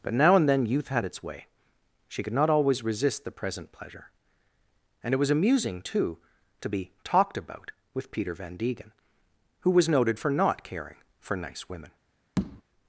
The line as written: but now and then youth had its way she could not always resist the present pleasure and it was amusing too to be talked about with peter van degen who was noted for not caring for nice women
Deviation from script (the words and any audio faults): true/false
true